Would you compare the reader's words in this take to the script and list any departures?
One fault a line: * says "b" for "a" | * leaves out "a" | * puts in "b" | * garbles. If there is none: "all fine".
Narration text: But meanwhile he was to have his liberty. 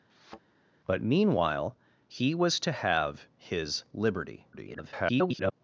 * garbles